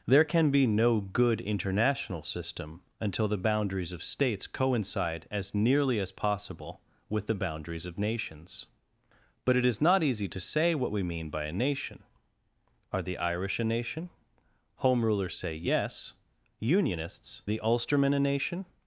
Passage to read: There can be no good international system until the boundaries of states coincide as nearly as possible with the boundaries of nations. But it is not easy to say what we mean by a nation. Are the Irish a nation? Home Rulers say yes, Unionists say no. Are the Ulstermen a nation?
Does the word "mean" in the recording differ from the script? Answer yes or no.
no